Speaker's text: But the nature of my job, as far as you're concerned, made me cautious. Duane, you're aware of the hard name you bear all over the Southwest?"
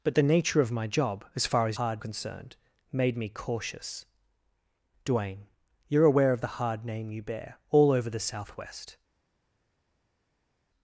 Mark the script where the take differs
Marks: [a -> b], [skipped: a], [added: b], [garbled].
But the nature of my job, as far as [you're -> hard] concerned, made me cautious. Duane, you're aware of the hard name you bear all over the Southwest?"